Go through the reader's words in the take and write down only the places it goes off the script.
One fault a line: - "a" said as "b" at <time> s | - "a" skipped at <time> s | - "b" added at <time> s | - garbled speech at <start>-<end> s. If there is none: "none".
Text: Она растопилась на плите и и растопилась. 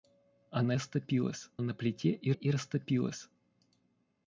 none